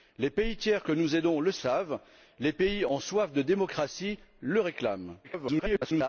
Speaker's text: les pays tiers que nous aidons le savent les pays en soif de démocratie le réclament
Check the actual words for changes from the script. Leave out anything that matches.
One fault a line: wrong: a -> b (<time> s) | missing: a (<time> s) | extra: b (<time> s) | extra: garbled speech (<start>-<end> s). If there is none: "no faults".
extra: garbled speech (5.2-6.1 s)